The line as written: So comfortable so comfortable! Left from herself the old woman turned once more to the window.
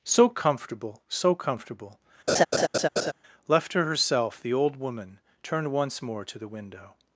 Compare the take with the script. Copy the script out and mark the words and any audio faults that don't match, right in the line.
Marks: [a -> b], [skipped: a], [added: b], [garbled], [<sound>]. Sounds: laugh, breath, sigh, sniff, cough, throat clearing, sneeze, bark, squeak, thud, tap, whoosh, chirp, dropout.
So comfortable so comfortable! [laugh] Left [from -> to] herself the old woman turned once more to the window.